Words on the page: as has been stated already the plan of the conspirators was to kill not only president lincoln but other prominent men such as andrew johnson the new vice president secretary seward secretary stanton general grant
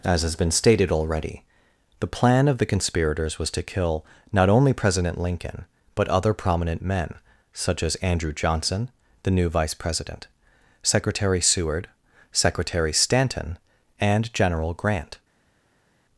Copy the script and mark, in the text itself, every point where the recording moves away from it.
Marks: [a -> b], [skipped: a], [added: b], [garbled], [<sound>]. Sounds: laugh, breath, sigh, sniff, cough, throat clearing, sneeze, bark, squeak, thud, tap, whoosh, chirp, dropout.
as has been stated already the plan of the conspirators was to kill not only president lincoln but other prominent men such as andrew johnson the new vice president secretary seward secretary stanton [added: and] general grant